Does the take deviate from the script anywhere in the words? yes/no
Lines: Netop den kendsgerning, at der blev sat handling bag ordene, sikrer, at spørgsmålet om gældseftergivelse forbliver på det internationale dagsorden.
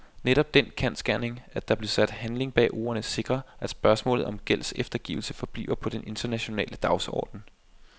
yes